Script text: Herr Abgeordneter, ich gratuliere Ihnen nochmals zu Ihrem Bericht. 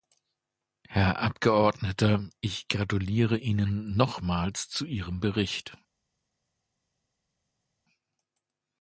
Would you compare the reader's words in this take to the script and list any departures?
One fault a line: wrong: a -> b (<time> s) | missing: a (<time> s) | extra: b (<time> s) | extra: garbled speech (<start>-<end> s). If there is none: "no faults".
no faults